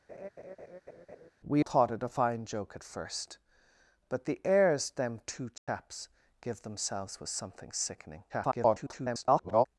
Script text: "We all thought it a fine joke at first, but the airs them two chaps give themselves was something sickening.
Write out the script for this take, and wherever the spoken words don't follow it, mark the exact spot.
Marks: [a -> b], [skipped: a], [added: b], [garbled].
"We [skipped: all] thought it a fine joke at first, but the airs them two chaps give themselves was something sickening. [garbled]